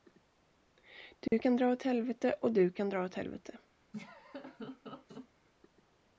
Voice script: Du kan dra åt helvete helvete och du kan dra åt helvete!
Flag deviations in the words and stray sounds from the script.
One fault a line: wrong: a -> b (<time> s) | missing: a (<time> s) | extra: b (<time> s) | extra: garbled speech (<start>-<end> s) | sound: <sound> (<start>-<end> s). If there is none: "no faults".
sound: dropout (1.3-1.3 s)
missing: helvete (2.3 s)
sound: laugh (3.9-5.3 s)